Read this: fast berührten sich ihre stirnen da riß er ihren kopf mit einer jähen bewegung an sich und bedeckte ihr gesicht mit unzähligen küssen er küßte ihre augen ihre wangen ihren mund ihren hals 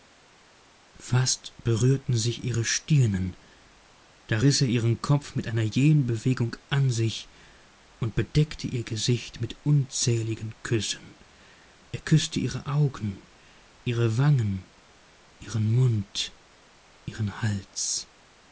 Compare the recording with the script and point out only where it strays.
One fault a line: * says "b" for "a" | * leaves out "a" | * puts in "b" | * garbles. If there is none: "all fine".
all fine